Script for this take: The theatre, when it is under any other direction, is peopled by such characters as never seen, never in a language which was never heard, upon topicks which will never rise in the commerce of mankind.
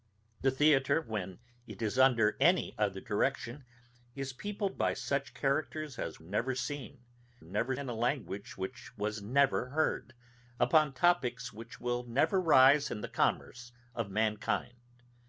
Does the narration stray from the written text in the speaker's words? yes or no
no